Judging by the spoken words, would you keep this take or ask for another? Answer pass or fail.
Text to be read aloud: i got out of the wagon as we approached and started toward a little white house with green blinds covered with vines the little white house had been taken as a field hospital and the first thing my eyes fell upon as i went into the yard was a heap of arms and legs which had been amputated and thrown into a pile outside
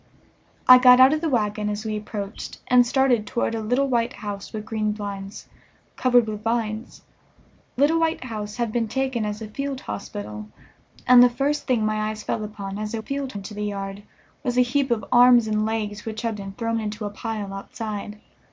fail